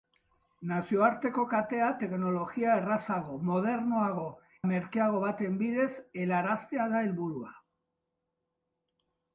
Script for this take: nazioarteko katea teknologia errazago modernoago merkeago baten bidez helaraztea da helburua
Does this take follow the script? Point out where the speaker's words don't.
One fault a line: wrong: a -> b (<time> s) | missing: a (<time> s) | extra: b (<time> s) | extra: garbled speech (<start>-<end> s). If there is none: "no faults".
no faults